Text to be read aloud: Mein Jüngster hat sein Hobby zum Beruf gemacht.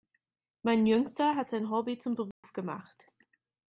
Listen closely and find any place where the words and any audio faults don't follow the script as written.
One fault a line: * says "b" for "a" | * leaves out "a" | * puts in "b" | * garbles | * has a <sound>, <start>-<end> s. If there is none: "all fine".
* has a dropout, 2.3-2.4 s